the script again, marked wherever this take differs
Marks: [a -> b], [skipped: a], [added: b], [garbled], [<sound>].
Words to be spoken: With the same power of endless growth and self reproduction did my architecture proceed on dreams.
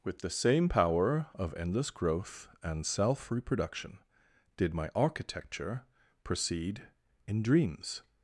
With the same power of endless growth and self reproduction did my architecture proceed [on -> in] dreams.